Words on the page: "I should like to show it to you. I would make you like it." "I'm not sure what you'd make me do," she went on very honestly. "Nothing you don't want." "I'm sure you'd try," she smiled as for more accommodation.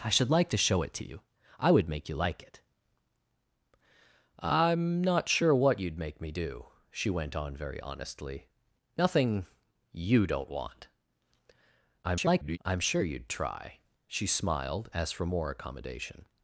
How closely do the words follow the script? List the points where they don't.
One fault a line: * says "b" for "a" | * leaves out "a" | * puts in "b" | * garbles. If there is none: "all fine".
* garbles